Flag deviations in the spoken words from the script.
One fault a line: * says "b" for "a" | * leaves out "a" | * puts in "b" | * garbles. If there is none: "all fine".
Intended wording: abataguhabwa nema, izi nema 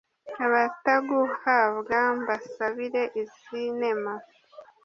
* says "mbasabire" for "nema"